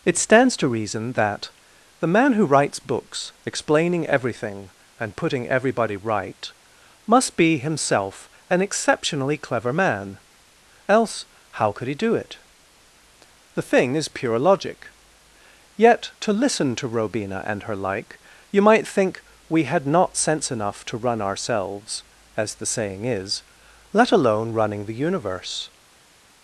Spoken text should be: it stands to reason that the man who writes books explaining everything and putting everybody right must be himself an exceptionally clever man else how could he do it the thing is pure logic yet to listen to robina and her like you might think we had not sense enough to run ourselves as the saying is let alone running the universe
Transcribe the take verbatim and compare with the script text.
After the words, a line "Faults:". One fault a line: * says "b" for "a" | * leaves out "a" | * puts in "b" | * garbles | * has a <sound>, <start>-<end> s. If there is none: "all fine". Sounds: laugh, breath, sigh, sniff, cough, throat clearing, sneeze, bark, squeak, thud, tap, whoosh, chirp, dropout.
it stands to reason that the man who writes books explaining everything and putting everybody right must be himself an exceptionally clever man else how could he do it the thing is pure logic yet to listen to robina and her like you might think we had not sense enough to run ourselves as the saying is let alone running the universe
Faults:
all fine